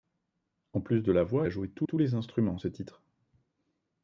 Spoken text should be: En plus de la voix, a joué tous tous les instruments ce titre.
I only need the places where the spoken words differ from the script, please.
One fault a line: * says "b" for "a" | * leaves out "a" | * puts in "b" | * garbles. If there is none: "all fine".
all fine